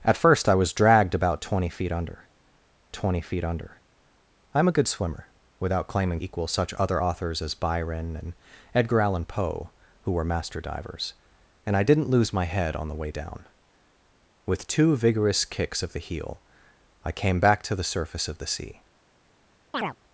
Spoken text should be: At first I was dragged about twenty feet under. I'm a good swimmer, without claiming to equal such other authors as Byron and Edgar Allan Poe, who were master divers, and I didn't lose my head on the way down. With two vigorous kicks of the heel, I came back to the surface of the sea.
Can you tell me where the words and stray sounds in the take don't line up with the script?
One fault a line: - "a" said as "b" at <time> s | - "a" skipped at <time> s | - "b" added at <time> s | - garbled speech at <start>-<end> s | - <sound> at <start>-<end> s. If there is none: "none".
- "twenty feet under" added at 2.9 s
- "to" skipped at 6.2 s
- chirp at 19.7-20.0 s